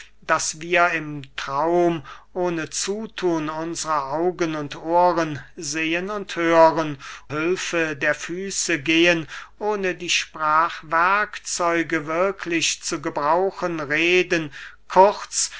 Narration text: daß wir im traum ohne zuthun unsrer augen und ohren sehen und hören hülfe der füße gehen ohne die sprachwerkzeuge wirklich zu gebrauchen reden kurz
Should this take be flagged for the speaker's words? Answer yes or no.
no